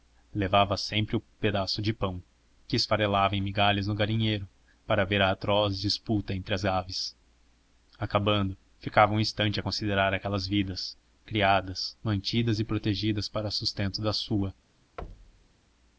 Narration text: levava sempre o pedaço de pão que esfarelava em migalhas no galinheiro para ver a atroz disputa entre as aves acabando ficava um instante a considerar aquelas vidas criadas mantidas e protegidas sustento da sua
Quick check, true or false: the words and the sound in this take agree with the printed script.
false